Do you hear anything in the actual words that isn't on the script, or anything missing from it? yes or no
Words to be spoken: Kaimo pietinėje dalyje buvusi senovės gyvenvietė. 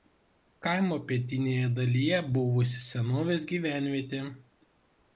no